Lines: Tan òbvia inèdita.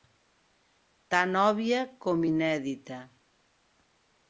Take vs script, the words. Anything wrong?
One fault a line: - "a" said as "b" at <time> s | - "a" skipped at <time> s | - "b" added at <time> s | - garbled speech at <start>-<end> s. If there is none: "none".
- "com" added at 2.1 s